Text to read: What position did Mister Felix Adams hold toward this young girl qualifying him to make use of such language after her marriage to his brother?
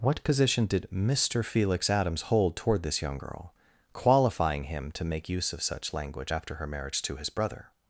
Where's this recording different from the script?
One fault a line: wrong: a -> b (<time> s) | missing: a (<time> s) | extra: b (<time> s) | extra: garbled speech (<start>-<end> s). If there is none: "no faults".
no faults